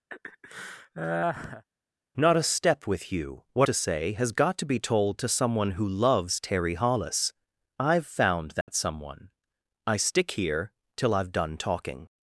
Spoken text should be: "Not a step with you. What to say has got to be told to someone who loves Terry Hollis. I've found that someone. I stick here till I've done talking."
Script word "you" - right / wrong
right